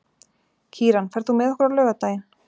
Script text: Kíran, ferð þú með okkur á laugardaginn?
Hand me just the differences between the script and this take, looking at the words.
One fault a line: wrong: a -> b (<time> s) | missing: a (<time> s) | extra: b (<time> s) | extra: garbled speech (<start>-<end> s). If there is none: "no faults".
no faults